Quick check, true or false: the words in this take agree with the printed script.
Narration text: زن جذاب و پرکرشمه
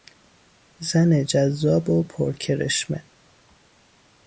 true